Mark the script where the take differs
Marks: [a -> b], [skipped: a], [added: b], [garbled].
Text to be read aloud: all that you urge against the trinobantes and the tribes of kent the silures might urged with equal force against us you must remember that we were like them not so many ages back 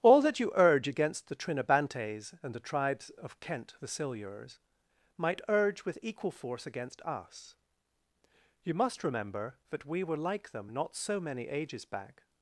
all that you urge against the trinobantes and the tribes of kent the silures might [urged -> urge] with equal force against us you must remember that we were like them not so many ages back